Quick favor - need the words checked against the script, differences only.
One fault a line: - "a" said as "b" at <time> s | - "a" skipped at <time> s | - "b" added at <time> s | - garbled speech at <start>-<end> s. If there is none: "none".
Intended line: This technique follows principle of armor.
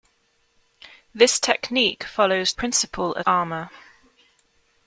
none